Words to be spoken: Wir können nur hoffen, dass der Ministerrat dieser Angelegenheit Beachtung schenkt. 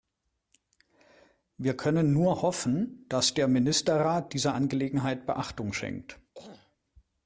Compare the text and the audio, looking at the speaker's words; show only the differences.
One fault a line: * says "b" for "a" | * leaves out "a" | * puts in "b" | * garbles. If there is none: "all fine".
all fine